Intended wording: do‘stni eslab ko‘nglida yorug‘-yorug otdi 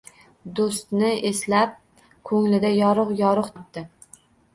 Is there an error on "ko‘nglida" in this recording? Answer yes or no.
no